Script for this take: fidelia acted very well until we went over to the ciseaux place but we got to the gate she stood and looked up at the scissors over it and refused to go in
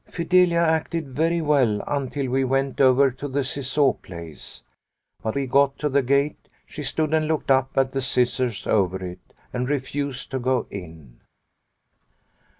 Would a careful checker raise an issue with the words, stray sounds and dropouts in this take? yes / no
no